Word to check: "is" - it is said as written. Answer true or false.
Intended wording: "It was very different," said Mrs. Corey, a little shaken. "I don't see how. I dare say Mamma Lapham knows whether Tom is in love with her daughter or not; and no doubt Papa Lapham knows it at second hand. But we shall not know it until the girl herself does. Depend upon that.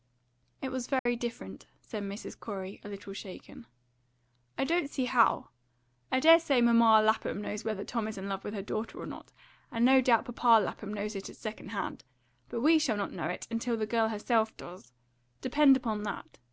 true